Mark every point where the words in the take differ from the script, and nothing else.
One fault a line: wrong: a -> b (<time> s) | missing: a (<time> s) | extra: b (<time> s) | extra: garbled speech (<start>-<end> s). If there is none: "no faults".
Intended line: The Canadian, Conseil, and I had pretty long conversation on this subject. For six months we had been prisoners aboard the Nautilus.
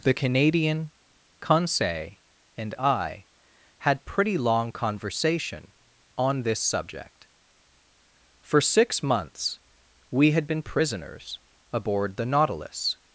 no faults